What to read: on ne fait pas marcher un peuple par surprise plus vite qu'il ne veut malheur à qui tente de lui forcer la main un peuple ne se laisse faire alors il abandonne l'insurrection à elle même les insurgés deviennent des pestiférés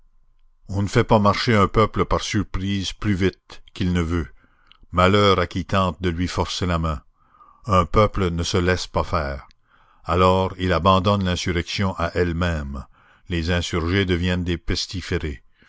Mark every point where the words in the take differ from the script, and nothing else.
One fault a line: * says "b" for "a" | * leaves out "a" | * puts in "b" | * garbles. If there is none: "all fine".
* puts in "pas"